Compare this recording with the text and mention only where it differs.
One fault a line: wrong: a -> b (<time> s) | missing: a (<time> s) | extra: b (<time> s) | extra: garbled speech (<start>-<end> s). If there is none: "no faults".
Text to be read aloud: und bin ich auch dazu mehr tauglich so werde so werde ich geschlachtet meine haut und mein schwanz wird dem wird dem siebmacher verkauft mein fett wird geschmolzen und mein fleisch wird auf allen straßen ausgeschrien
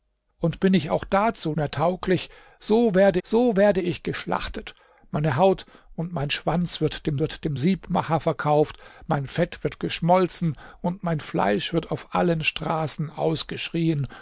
no faults